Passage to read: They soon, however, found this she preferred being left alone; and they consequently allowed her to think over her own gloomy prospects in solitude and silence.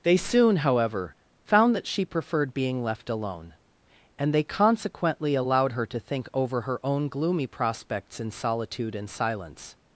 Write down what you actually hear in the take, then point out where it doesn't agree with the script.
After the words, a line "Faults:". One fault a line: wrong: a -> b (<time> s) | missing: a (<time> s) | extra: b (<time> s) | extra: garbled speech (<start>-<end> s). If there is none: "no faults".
They soon, however, found that she preferred being left alone; and they consequently allowed her to think over her own gloomy prospects in solitude and silence.
Faults:
wrong: this -> that (1.8 s)